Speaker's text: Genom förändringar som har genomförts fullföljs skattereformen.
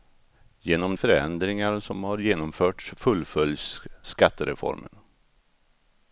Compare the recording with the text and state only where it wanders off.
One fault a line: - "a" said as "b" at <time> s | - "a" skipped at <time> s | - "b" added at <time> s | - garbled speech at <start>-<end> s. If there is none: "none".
none